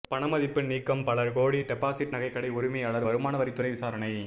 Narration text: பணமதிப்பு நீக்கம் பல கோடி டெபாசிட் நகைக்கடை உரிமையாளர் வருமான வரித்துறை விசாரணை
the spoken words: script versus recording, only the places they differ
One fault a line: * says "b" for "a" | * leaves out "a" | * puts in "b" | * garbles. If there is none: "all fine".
all fine